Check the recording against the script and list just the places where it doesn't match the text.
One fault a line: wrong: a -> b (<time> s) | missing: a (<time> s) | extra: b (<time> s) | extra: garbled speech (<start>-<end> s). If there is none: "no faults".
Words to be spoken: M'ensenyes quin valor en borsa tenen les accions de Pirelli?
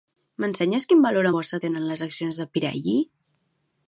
missing: en (1.3 s)